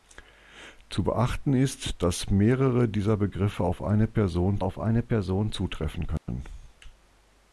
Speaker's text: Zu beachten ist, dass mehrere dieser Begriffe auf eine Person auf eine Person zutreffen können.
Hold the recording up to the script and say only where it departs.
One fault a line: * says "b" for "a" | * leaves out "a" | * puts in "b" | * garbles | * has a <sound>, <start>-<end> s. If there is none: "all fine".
* has a dropout, 6.2-6.3 s